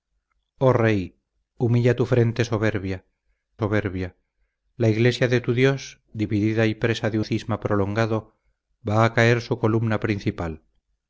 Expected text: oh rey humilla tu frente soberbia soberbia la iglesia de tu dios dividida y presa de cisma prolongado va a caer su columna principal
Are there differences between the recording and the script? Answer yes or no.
no